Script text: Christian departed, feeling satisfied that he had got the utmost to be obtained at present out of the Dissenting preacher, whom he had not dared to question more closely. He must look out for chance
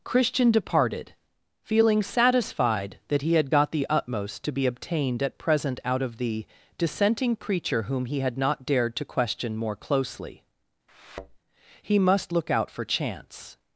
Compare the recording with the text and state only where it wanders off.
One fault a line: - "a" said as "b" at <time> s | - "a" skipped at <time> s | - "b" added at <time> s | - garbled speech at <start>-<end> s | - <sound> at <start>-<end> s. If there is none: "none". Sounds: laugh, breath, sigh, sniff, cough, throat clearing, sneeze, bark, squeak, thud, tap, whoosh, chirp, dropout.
- thud at 10.9-11.4 s